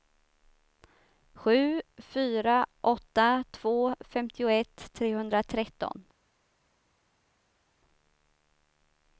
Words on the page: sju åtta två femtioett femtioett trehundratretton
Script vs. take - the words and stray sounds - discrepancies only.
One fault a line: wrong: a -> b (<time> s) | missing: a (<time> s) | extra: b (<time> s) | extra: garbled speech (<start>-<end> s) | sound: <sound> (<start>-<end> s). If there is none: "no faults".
extra: fyra (2.0 s)
missing: femtioett (4.9 s)